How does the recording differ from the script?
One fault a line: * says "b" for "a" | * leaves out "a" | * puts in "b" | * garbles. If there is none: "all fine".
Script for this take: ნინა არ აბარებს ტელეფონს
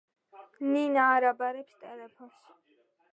all fine